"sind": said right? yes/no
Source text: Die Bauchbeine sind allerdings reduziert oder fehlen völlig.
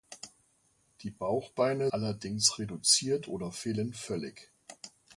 no